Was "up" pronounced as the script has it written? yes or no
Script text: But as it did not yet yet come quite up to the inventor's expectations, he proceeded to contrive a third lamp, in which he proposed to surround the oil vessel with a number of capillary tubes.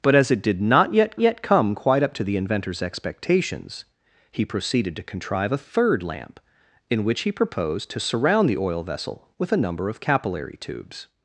yes